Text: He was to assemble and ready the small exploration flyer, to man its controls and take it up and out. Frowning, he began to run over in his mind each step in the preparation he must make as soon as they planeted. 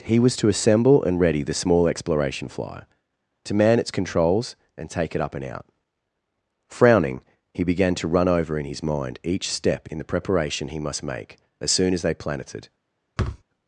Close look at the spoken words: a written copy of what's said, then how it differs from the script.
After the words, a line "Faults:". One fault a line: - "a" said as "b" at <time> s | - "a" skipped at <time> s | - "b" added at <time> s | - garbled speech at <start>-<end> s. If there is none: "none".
He was to assemble and ready the small exploration flyer, to man its controls and take it up and out. Frowning, he began to run over in his mind each step in the preparation he must make as soon as they planeted.
Faults:
none